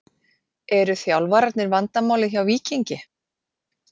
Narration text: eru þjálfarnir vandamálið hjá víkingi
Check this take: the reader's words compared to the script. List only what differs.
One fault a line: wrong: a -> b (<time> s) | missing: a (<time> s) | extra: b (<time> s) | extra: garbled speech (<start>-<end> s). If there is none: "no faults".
no faults